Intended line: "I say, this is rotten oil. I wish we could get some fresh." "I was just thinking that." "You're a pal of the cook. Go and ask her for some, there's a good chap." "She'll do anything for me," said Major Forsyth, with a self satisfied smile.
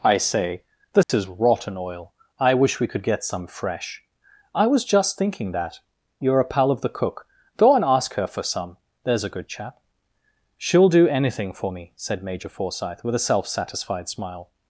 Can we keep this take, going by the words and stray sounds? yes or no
no